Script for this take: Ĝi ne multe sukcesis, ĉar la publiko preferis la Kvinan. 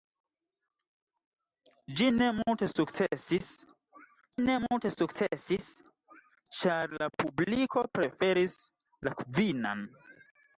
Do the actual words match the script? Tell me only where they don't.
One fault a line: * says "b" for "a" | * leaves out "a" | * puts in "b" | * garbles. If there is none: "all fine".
* puts in "ne multe sukcesis"